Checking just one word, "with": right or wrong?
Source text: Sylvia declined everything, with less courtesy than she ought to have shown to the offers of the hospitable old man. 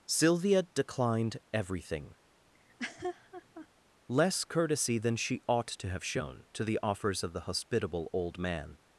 wrong